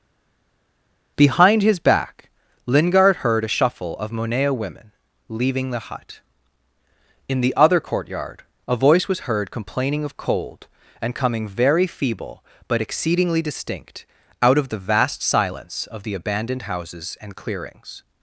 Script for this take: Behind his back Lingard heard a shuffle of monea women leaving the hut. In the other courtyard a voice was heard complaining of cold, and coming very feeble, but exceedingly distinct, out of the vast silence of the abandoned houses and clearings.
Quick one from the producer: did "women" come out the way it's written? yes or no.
yes